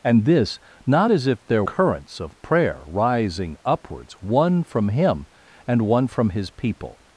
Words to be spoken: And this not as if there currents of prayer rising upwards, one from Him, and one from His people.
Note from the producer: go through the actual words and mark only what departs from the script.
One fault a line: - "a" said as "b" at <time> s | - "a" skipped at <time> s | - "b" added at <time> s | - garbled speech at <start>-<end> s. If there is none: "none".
none